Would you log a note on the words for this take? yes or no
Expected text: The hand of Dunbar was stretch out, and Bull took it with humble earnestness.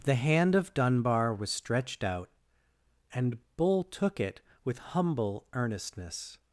yes